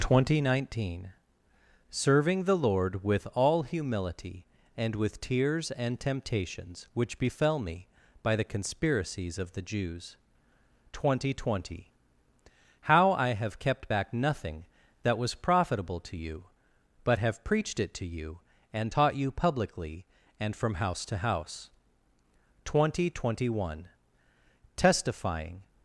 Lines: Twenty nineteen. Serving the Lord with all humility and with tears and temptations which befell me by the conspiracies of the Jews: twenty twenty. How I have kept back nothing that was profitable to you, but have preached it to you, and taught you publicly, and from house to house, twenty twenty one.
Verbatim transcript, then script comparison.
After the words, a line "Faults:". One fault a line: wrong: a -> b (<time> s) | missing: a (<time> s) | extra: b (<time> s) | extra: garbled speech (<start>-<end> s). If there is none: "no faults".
Twenty nineteen. Serving the Lord with all humility and with tears and temptations which befell me by the conspiracies of the Jews: twenty twenty. How I have kept back nothing that was profitable to you, but have preached it to you, and taught you publicly, and from house to house, twenty twenty one. Testifying
Faults:
extra: Testifying (24.8 s)